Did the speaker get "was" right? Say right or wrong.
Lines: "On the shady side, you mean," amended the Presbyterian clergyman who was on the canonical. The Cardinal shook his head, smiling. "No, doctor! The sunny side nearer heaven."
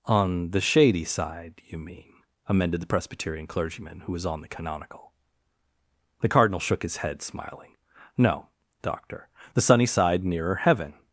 right